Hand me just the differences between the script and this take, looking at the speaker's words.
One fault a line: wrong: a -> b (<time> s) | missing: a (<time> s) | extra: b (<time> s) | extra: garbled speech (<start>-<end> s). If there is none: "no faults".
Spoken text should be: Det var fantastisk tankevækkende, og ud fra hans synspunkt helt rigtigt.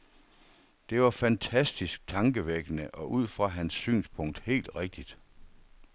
no faults